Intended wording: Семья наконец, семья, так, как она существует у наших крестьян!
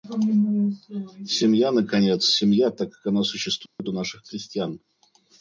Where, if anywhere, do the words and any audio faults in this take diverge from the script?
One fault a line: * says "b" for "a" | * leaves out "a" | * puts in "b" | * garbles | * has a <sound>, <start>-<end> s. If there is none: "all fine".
* has a dropout, 3.7-3.8 s